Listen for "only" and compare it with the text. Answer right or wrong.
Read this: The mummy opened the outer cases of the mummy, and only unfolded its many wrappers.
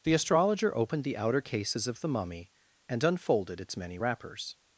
wrong